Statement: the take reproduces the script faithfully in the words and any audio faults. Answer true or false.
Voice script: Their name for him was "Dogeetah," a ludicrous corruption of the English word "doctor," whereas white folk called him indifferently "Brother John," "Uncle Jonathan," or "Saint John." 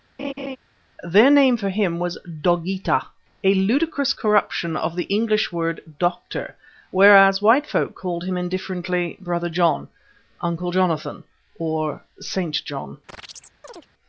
false